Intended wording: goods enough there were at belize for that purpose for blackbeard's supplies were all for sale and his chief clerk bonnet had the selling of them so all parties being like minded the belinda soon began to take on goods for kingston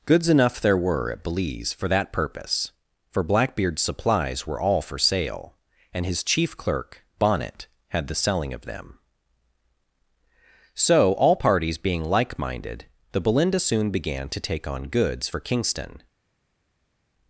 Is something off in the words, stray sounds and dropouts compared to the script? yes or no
no